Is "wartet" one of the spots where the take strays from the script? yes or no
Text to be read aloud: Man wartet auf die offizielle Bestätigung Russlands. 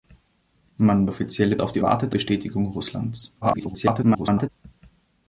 yes